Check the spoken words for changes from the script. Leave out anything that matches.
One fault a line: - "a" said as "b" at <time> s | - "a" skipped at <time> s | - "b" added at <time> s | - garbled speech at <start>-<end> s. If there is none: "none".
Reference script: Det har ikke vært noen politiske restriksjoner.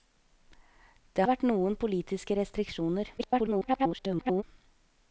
- "har ikke" skipped at 1.2 s
- garbled speech at 3.2-4.4 s